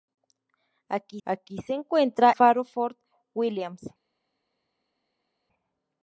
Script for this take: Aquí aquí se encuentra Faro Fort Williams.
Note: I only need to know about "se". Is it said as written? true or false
true